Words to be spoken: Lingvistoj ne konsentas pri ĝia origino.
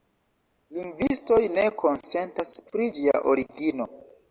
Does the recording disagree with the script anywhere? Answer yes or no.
no